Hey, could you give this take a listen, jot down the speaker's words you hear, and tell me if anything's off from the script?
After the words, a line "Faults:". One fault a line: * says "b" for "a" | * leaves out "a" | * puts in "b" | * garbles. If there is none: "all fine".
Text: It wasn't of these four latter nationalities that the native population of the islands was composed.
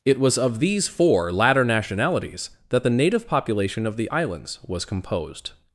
It was of these four latter nationalities that the native population of the islands was composed.
Faults:
* says "was" for "wasn't"